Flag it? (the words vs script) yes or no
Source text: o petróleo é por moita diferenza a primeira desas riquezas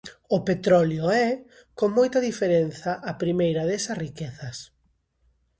yes